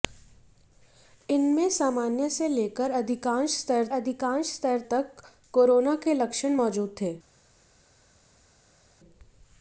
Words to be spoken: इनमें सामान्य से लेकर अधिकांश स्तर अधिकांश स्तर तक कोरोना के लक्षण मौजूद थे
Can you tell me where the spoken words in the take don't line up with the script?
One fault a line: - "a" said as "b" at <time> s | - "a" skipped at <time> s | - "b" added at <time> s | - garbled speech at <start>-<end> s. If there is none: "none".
none